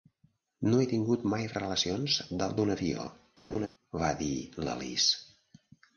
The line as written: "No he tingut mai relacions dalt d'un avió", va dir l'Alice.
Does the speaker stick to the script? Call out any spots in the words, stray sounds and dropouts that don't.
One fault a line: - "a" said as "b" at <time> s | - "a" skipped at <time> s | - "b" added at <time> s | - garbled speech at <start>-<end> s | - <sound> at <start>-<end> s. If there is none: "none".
- laugh at 3.5-3.7 s